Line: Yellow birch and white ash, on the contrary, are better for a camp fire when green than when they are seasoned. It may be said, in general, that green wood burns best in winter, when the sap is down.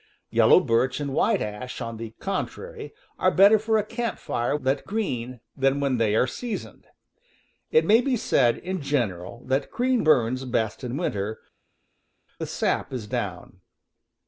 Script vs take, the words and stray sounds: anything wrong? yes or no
yes